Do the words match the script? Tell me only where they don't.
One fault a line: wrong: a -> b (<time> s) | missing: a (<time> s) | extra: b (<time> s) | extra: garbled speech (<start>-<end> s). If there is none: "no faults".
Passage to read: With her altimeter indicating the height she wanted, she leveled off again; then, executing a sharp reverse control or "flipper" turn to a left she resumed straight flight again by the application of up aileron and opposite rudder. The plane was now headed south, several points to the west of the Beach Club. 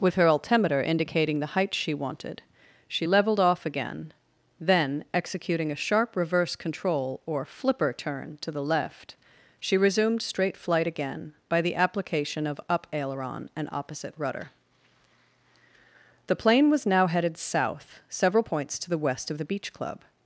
wrong: a -> the (8.5 s)